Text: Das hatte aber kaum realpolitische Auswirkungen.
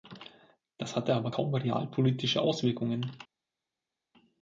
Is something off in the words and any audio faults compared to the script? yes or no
no